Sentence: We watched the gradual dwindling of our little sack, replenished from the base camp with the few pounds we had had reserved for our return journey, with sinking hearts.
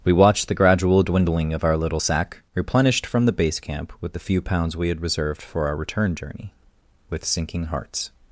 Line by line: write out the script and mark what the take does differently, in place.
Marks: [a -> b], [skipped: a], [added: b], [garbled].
We watched the gradual dwindling of our little sack, replenished from the base camp with the few pounds we had [skipped: had] reserved for our return journey, with sinking hearts.